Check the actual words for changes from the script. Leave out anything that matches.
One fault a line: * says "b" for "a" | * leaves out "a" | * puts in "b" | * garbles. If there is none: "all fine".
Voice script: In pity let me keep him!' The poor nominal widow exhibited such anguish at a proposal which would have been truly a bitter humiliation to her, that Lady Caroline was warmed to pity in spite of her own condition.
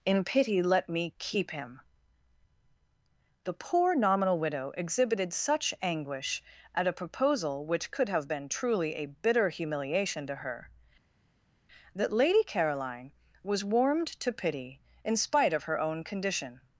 * says "could" for "would"